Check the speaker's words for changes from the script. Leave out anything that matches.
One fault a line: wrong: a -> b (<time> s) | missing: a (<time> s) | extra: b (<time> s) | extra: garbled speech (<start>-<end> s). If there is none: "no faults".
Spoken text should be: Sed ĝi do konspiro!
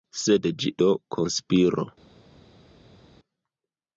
no faults